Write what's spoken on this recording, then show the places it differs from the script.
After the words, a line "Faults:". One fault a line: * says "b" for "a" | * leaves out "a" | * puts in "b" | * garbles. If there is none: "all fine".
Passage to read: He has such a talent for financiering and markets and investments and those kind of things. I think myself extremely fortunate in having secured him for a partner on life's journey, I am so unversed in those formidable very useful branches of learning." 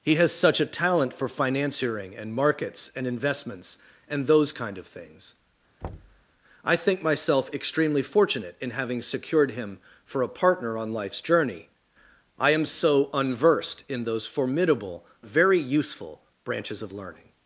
He has such a talent for financiering and markets and investments and those kind of things. I think myself extremely fortunate in having secured him for a partner on life's journey, I am so unversed in those formidable very useful branches of learning."
Faults:
all fine